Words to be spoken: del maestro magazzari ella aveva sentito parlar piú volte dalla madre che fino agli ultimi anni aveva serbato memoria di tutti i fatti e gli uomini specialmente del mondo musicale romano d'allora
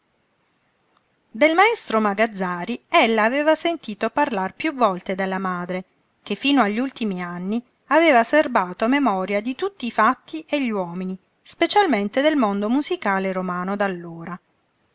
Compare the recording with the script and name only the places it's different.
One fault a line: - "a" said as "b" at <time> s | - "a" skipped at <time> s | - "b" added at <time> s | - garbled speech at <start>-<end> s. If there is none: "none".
none